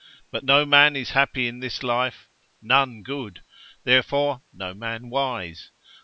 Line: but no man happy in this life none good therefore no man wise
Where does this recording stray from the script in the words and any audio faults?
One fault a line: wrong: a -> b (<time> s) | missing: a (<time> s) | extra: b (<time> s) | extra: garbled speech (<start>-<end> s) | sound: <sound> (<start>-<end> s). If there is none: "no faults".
extra: is (0.9 s)